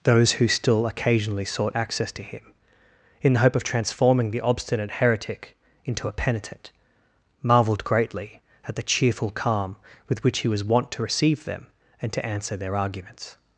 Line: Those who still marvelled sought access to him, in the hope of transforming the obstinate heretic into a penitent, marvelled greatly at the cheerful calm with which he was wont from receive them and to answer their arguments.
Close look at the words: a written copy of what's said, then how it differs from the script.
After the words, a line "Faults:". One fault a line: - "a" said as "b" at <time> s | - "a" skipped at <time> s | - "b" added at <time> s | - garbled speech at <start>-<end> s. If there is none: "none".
Those who still occasionally sought access to him, in the hope of transforming the obstinate heretic into a penitent, marvelled greatly at the cheerful calm with which he was wont to receive them and to answer their arguments.
Faults:
- "marvelled" said as "occasionally" at 0.9 s
- "from" said as "to" at 10.9 s